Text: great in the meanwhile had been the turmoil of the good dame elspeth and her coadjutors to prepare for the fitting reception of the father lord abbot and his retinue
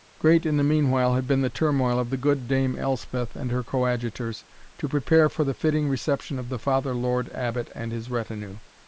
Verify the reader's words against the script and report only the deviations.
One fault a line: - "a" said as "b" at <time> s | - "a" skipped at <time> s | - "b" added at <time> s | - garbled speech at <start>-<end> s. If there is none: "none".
none